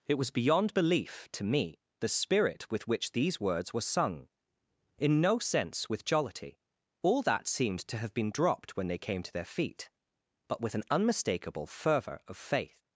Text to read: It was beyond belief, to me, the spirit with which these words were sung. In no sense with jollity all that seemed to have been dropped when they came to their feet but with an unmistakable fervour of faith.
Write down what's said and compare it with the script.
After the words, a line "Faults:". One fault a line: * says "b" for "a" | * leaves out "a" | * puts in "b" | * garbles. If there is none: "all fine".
It was beyond belief, to me, the spirit with which these words were sung. In no sense with jollity all that seemed to have been dropped when they came to their feet but with an unmistakable fervour of faith.
Faults:
all fine